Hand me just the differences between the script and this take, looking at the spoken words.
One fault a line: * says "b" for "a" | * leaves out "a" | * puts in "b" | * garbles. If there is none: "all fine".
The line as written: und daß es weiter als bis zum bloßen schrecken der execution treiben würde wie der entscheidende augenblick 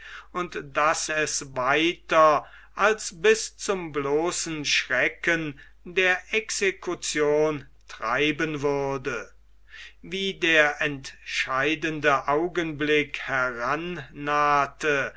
all fine